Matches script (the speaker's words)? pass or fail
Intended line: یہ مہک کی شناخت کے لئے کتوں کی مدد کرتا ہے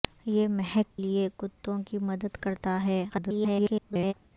fail